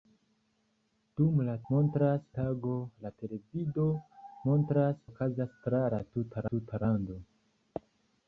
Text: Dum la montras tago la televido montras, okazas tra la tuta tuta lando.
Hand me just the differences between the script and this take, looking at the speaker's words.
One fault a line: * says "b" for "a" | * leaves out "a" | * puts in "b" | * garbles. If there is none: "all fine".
all fine